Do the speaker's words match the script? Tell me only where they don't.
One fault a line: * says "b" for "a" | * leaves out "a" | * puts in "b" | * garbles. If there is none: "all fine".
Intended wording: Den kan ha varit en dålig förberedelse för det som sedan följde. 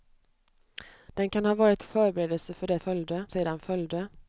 * leaves out "en dålig"
* says "följde" for "som"